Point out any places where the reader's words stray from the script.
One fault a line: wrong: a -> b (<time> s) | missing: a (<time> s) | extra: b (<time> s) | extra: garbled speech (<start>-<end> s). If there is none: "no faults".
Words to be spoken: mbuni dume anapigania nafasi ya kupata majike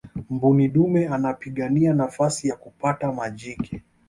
no faults